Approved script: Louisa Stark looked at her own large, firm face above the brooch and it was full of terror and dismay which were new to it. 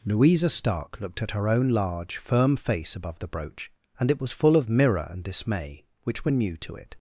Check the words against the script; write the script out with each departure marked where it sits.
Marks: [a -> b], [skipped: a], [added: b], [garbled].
Louisa Stark looked at her own large, firm face above the brooch and it was full of [terror -> mirror] and dismay which were new to it.